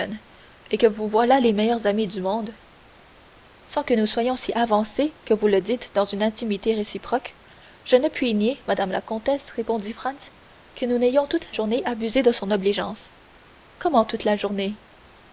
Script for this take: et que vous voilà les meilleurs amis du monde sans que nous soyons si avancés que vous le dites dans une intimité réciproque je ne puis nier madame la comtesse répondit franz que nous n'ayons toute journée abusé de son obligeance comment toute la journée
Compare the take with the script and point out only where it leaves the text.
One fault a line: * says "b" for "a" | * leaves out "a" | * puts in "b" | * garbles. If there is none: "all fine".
all fine